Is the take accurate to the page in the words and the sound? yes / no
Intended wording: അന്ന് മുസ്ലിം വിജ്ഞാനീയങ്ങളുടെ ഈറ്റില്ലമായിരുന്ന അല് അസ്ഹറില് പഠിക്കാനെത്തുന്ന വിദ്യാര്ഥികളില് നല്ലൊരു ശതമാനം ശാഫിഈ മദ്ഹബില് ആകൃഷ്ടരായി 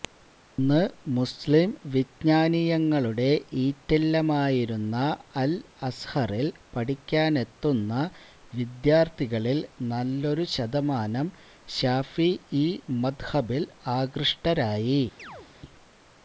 no